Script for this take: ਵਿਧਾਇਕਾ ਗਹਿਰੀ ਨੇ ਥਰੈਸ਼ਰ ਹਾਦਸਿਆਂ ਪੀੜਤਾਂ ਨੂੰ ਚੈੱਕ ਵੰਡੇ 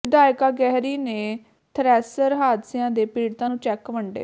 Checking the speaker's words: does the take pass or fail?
fail